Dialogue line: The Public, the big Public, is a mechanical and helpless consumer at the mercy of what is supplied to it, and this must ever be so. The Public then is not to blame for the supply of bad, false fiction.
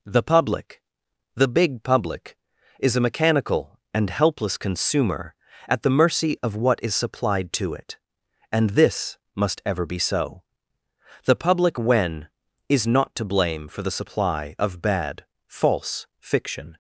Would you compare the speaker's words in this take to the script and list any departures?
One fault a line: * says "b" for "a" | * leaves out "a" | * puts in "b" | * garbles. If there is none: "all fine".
* says "when" for "then"